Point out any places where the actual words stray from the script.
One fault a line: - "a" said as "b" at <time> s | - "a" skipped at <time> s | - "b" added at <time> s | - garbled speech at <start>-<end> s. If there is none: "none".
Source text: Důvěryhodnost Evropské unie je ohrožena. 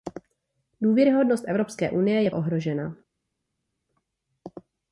none